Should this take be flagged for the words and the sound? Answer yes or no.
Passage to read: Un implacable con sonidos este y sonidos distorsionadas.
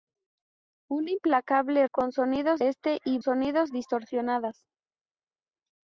no